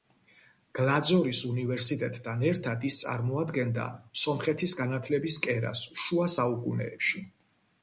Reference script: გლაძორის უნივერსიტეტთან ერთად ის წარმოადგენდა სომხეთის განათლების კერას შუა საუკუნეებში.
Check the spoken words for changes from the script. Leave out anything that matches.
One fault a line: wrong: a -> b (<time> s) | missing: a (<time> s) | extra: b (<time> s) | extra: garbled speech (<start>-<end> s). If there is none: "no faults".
no faults